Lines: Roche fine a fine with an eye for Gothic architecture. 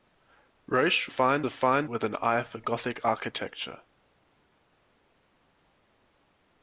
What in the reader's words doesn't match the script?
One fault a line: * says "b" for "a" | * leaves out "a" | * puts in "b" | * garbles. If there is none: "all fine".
all fine